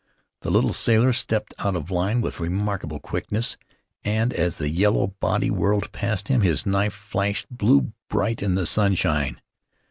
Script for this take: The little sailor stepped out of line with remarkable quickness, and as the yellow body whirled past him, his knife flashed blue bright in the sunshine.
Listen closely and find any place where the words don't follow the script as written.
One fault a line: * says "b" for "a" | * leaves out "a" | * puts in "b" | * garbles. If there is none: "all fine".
all fine